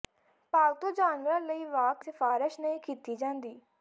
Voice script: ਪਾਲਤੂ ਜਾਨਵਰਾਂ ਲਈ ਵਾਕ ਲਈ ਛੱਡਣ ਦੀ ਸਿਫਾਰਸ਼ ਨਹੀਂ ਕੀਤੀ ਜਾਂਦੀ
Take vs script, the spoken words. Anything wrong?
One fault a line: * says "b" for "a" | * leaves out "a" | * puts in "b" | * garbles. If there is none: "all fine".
* leaves out "ਲਈ ਛੱਡਣ ਦੀ"